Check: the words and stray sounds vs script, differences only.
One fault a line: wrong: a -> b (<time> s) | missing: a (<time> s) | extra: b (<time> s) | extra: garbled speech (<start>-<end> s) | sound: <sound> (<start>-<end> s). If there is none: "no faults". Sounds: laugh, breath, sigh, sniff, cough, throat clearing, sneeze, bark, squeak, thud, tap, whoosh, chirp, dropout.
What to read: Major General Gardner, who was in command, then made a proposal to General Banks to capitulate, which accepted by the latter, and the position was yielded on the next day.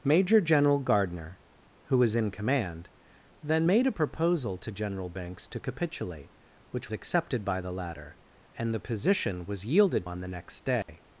sound: dropout (10.8-10.9 s)